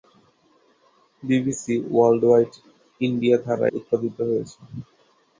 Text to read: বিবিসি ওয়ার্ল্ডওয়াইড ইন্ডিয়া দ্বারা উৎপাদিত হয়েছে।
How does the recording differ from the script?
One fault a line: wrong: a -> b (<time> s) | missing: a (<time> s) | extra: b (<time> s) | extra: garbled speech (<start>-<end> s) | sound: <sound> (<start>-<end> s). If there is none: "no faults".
no faults